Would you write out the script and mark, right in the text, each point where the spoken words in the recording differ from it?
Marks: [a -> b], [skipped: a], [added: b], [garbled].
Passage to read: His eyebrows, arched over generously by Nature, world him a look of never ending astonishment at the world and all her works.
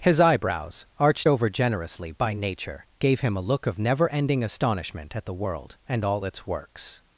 His eyebrows, arched over generously by Nature, [world -> gave] him a look of never ending astonishment at the world and all [her -> its] works.